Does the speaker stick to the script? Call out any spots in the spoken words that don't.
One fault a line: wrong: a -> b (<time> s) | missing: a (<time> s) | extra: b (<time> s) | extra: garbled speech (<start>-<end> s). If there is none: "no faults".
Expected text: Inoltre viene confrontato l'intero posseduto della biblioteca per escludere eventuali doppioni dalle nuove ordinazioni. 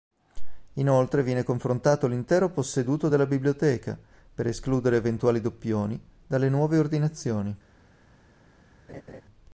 no faults